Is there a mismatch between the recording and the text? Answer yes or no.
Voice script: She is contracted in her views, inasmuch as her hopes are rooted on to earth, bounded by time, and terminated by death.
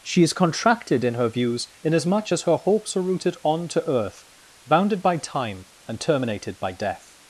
no